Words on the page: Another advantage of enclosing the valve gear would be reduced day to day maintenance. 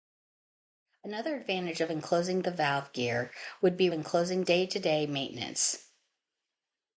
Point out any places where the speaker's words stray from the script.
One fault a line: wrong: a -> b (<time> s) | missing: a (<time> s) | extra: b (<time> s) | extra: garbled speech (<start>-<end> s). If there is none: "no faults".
wrong: reduced -> enclosing (3.9 s)